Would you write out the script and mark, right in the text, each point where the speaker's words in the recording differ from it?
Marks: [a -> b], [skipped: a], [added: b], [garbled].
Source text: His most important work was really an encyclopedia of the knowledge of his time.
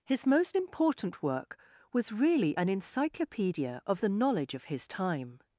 His most important work was really an encyclopedia of the knowledge of his time.